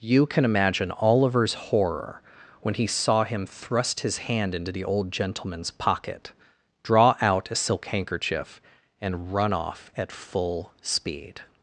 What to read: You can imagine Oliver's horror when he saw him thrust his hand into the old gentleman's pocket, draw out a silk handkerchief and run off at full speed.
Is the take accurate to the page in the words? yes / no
yes